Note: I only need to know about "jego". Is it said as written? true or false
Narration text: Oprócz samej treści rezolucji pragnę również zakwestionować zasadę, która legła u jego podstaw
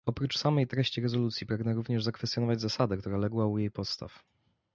false